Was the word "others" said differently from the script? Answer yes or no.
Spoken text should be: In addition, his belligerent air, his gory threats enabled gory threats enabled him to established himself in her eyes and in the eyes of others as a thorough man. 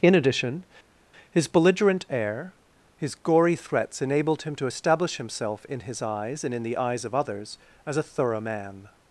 no